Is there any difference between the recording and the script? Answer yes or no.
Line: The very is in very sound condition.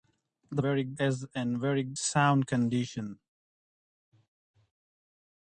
no